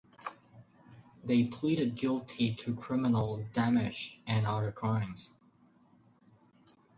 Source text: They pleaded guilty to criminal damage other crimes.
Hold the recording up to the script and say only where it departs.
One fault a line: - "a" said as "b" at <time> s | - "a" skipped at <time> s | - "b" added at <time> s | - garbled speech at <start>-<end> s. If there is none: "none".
- "and" added at 4.3 s